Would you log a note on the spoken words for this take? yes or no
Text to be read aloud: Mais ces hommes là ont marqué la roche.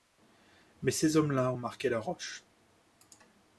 no